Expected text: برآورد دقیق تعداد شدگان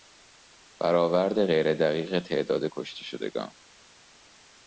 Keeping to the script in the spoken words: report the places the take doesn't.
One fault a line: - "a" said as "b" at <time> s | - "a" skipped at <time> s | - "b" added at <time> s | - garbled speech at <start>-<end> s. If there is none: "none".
- "غیر" added at 1.4 s
- "کشته" added at 2.7 s